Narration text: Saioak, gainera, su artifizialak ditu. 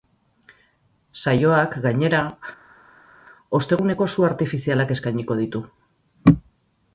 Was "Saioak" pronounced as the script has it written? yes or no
yes